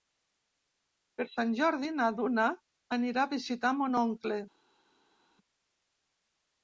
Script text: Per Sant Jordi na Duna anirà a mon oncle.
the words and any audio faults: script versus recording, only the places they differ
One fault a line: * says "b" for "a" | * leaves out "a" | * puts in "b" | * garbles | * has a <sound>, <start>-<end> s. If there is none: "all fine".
* puts in "visitar"